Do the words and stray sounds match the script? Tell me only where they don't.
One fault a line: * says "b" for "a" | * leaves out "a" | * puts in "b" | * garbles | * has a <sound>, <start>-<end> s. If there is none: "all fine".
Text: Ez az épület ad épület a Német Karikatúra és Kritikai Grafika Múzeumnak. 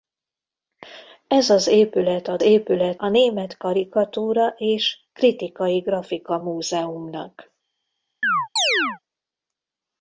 * has a chirp, 8.2-9.0 s